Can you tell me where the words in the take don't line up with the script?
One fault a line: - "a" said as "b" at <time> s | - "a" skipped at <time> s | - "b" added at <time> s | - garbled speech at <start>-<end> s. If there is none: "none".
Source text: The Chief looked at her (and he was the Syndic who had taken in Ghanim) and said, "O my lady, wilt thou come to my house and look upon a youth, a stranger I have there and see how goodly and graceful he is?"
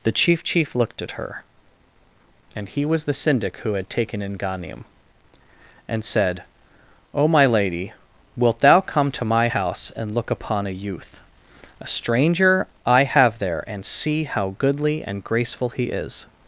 - "Chief" added at 0.4 s